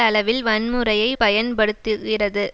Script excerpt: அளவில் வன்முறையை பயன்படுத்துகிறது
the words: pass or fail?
pass